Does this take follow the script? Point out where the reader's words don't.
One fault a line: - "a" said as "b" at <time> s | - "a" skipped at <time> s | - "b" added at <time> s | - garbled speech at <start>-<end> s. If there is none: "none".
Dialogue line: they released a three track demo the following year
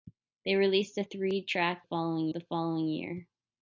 - "demo" said as "following" at 1.8 s